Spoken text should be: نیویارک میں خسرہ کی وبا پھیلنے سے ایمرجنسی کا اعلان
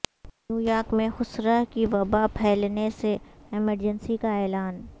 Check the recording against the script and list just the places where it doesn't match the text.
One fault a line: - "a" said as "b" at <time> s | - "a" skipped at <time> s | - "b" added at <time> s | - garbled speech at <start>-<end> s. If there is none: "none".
none